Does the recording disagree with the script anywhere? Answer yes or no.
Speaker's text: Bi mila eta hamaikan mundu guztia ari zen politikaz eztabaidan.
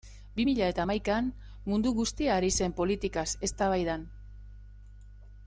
no